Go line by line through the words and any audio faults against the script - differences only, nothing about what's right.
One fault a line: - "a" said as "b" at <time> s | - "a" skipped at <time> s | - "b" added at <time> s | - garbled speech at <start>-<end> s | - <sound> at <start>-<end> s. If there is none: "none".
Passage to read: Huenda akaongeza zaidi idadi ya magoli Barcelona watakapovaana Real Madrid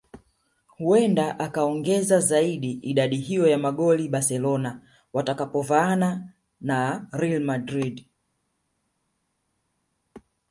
- "hiyo" added at 3.2 s
- "na" added at 6.6 s